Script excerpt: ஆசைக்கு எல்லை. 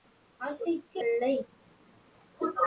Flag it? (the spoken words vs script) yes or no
no